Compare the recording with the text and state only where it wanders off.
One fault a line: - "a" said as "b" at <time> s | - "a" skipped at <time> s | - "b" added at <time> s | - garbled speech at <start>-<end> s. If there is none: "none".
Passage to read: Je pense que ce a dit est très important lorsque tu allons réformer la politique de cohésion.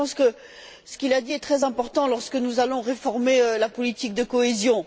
- "qu'il" added at 1.0 s
- "tu" said as "nous" at 2.4 s